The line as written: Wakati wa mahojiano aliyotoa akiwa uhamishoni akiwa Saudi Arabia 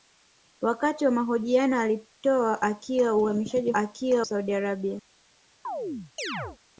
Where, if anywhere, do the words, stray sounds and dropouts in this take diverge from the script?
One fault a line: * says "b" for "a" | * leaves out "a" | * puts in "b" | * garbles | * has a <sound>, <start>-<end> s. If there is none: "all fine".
* has a chirp, 5.6-6.6 s